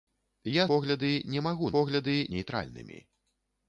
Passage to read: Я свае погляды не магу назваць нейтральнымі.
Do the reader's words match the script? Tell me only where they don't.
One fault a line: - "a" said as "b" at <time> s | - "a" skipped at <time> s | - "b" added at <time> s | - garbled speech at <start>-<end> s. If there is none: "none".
- "свае" skipped at 0.6 s
- "назваць" said as "погляды" at 1.7 s